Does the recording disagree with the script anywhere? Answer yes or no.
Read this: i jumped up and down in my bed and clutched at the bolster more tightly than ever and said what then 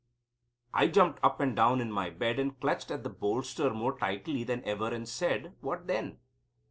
no